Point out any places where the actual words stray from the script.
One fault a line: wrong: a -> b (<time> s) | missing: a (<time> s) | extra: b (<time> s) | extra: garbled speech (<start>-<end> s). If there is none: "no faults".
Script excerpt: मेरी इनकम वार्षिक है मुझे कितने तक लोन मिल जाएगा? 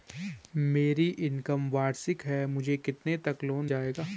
missing: मिल (3.6 s)